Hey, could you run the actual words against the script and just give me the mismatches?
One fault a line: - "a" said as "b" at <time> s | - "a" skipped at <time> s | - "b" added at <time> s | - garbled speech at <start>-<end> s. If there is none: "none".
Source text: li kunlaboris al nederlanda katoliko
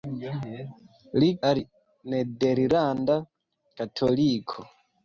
- "kunlaboris" skipped at 1.3 s